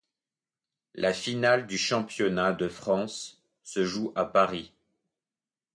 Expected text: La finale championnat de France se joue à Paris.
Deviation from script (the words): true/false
true